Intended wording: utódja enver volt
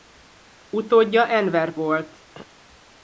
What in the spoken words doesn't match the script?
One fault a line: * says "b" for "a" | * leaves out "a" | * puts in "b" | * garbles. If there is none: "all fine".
all fine